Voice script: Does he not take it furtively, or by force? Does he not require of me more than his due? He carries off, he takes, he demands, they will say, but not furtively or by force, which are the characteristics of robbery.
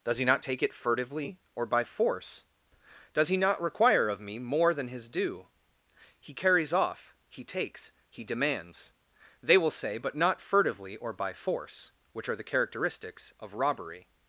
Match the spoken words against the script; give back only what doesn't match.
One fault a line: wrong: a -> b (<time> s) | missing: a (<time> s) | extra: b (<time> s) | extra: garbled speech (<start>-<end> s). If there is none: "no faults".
no faults